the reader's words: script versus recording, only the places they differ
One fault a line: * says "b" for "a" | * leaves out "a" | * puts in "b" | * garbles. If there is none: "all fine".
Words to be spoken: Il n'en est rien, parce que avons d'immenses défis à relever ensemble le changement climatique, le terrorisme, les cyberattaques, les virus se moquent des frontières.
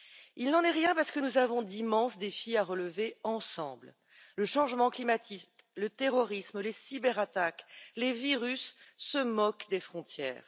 * puts in "nous"